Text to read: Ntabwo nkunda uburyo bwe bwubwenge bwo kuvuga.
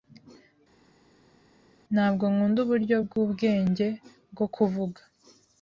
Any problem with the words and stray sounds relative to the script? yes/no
yes